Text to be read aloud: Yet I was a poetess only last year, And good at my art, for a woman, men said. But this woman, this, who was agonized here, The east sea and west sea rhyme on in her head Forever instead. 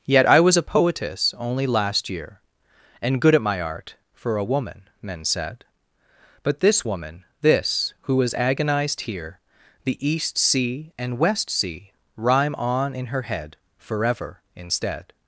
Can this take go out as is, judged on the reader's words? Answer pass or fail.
pass